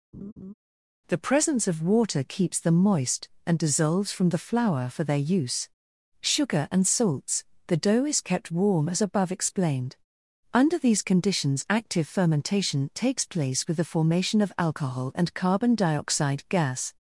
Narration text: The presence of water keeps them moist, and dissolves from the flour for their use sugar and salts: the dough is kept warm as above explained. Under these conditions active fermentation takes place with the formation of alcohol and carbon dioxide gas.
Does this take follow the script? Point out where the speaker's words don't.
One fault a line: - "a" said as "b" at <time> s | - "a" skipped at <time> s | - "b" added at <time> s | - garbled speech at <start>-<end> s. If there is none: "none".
none